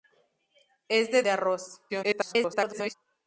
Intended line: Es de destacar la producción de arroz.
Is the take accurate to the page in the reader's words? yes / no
no